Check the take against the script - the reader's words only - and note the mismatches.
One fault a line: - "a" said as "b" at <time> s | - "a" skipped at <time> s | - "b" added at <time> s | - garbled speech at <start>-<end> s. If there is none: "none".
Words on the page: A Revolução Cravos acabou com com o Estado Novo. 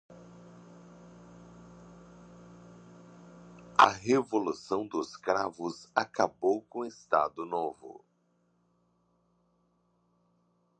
- "dos" added at 4.9 s
- "com" skipped at 6.8 s